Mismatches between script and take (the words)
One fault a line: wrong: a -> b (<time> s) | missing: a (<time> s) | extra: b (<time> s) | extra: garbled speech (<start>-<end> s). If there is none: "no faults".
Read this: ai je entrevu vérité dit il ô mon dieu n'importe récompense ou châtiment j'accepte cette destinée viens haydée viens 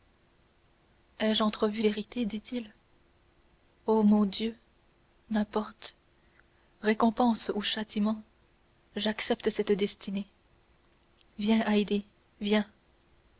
no faults